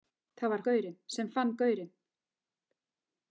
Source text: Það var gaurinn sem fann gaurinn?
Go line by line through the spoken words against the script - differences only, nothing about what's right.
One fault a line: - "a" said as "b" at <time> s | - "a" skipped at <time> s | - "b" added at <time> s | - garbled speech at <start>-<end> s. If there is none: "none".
none